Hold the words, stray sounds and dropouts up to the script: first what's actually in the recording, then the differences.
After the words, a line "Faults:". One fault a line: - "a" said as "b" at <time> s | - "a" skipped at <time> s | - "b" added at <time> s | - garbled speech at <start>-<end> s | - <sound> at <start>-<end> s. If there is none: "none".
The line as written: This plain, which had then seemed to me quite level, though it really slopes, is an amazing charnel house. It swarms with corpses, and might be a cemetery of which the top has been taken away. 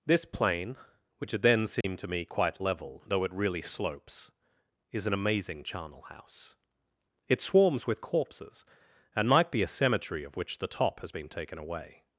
This plain, which had then seemed to me quite level, though it really slopes, is an amazing charnel house. It swarms with corpses, and might be a cemetery of which the top has been taken away.
Faults:
- dropout at 1.8-1.8 s